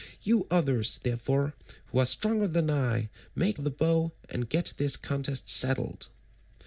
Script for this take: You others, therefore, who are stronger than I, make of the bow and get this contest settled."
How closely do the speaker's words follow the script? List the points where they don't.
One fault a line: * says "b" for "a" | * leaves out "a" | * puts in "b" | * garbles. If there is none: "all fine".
all fine